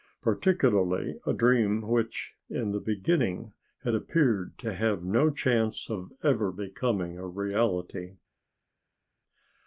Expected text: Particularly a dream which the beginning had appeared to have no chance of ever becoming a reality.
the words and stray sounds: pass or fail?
fail